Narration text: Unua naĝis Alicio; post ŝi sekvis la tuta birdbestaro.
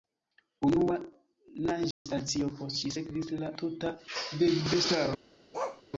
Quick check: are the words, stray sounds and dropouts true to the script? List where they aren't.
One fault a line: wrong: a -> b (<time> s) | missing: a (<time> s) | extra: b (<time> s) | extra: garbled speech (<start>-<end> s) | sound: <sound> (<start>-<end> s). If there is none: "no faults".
sound: dropout (1.9-2.1 s)
sound: bark (5.5-5.8 s)